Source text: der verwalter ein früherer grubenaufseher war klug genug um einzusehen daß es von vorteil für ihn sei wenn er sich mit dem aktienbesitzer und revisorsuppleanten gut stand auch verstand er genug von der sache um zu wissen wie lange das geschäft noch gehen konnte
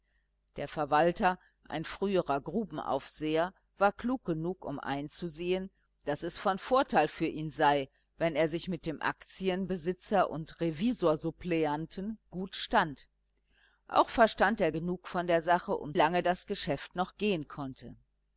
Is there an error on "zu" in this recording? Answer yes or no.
yes